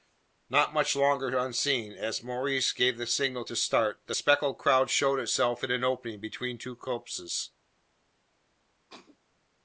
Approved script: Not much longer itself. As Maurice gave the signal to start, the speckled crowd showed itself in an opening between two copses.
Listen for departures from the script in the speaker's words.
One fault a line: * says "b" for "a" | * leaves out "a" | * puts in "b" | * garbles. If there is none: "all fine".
* says "unseen" for "itself"